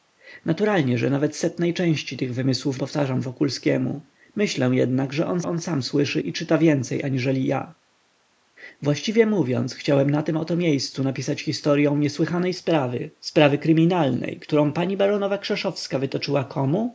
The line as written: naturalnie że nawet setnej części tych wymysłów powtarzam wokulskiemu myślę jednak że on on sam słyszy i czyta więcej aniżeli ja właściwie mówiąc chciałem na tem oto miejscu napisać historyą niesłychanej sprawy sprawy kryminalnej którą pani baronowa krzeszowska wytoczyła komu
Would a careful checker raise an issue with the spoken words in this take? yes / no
no